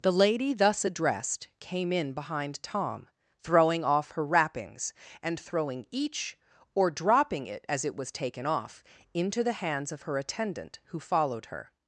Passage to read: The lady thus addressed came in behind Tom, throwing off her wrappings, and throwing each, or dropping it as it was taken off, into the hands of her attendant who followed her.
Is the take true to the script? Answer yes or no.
yes